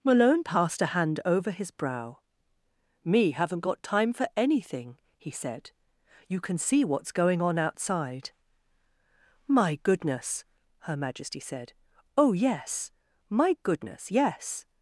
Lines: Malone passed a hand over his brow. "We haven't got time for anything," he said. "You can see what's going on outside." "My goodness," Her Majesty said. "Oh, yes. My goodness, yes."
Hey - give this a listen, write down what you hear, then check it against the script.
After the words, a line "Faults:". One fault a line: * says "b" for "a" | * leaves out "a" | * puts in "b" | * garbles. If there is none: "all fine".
Malone passed a hand over his brow. "Me haven't got time for anything," he said. "You can see what's going on outside." "My goodness," Her Majesty said. "Oh, yes. My goodness, yes."
Faults:
* says "Me" for "We"